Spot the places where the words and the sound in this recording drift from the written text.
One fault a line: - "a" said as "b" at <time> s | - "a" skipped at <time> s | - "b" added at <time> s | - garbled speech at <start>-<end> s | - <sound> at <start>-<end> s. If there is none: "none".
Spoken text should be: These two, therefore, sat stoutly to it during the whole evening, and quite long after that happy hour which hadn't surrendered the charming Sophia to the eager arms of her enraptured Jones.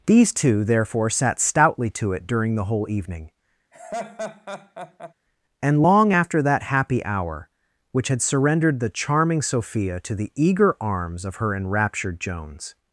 - laugh at 3.7-5.1 s
- "quite" skipped at 5.8 s
- "hadn't" said as "had" at 8.1 s